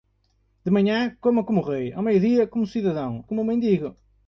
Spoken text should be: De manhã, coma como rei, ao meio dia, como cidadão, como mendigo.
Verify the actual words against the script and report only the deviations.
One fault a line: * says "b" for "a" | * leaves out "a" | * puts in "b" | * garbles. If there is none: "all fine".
all fine